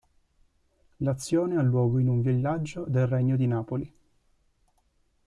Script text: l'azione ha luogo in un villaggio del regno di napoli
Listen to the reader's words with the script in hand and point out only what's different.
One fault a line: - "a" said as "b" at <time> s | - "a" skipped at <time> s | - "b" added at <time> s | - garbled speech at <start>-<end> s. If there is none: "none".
none